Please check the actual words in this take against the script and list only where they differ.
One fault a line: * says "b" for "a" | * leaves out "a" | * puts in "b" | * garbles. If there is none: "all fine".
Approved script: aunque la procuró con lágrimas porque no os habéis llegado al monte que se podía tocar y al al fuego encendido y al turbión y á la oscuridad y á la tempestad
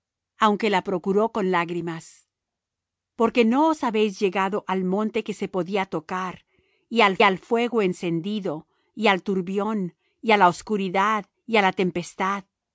all fine